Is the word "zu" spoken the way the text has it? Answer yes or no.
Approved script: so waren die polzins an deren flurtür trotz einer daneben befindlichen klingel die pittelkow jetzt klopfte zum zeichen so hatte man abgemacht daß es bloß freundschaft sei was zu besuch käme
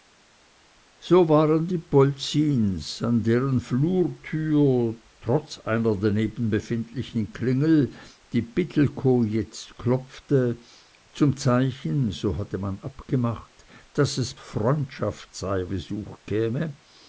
no